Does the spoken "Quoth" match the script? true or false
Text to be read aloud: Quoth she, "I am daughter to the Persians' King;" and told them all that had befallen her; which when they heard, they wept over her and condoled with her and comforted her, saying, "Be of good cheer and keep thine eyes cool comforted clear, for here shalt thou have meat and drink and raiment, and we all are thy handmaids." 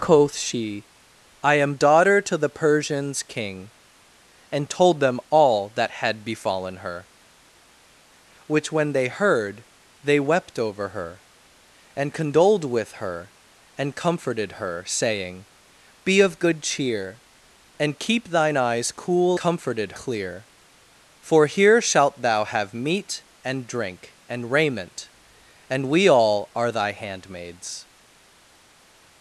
true